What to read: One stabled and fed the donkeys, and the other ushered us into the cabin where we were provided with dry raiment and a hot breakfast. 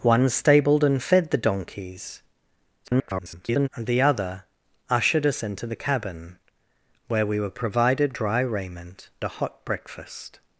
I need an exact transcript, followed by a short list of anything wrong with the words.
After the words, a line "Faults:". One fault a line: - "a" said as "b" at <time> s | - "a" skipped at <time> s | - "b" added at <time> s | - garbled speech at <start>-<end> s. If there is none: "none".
One stabled and fed the donkeys, [garbled] and the other ushered us into the cabin where we were provided dry raiment a hot breakfast.
Faults:
- garbled speech at 2.8-3.7 s
- "with" skipped at 8.1 s
- "and" skipped at 9.1 s